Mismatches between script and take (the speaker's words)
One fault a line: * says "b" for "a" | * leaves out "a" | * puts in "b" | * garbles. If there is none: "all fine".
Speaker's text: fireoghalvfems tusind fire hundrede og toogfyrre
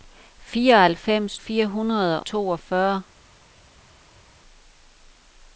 * leaves out "tusind"
* leaves out "og"